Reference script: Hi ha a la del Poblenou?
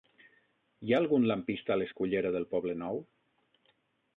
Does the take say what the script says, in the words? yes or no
no